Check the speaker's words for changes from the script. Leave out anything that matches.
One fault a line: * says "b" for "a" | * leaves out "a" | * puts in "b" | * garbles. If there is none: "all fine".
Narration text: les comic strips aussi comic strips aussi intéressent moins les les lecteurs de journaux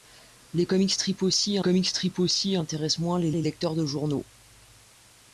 all fine